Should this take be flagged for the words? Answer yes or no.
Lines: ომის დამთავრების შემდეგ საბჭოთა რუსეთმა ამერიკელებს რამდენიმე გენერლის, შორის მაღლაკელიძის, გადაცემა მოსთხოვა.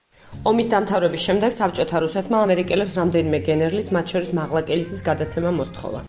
yes